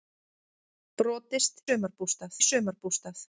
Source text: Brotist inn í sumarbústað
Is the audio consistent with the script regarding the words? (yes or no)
no